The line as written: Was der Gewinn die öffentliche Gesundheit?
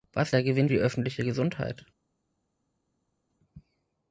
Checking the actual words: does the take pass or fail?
pass